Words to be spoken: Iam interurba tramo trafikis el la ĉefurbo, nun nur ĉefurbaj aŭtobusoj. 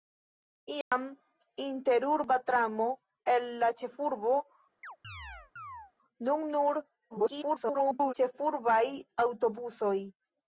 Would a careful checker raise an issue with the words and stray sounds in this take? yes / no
yes